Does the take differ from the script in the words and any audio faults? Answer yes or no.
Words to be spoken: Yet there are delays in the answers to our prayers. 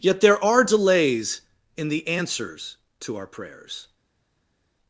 no